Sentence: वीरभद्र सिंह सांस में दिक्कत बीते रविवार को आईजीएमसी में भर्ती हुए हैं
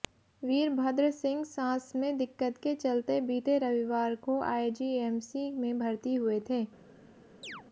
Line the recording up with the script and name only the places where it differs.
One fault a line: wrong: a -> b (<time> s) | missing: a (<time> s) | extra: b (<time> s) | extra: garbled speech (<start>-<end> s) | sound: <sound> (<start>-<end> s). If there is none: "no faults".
extra: के चलते (2.6 s)
wrong: हैं -> थे (6.5 s)
sound: chirp (7.4-7.6 s)